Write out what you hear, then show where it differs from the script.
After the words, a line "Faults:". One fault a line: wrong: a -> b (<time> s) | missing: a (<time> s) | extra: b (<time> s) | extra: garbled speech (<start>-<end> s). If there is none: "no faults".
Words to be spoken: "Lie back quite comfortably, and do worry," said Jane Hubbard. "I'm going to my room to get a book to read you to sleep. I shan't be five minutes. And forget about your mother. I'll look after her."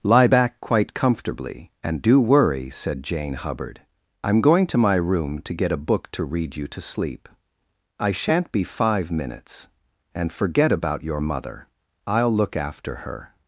"Lie back quite comfortably, and do worry," said Jane Hubbard. "I'm going to my room to get a book to read you to sleep. I shan't be five minutes. And forget about your mother. I'll look after her."
Faults:
no faults